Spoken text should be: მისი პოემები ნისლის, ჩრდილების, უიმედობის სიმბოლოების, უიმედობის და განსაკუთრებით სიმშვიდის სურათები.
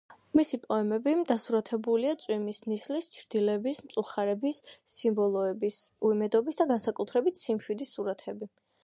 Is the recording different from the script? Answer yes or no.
yes